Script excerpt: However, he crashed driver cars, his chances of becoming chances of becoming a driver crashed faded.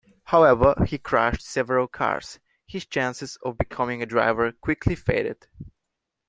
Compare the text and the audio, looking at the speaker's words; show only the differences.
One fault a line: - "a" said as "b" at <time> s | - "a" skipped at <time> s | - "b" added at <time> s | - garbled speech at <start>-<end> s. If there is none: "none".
- "driver" said as "several" at 1.4 s
- "chances of becoming" skipped at 4.0 s
- "crashed" said as "quickly" at 4.5 s